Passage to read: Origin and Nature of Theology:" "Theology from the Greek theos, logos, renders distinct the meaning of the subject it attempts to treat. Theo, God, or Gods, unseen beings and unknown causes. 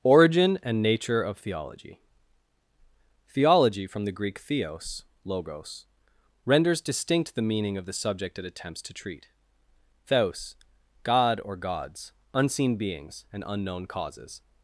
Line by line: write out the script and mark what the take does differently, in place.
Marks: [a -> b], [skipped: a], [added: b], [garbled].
Origin and Nature of Theology:" "Theology from the Greek theos, logos, renders distinct the meaning of the subject it attempts to treat. [Theo, -> Theos] God, or Gods, unseen beings and unknown causes.